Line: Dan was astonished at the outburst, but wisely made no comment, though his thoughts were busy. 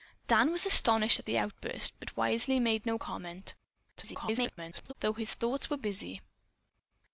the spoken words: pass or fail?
fail